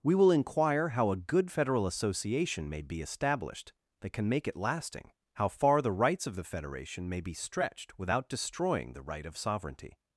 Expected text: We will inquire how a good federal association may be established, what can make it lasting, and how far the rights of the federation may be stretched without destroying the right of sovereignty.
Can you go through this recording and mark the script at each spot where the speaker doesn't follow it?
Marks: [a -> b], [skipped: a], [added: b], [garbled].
We will inquire how a good federal association may be established, [what -> that] can make it lasting, [skipped: and] how far the rights of the federation may be stretched without destroying the right of sovereignty.